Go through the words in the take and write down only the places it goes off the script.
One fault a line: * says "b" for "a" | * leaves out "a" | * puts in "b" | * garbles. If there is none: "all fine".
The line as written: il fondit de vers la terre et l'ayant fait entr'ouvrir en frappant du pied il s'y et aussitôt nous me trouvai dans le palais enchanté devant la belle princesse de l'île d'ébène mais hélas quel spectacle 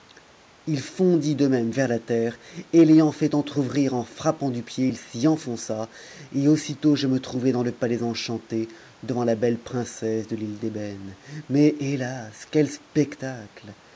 * puts in "même"
* puts in "enfonça"
* says "je" for "nous"